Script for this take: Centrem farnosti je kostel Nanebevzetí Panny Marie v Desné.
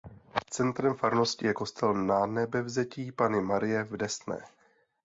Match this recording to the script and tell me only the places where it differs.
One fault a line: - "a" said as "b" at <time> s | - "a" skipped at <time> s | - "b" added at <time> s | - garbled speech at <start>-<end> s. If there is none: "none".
none